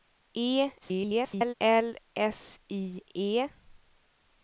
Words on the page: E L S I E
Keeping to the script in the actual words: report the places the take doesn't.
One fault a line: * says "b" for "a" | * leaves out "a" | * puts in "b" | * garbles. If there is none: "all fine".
* garbles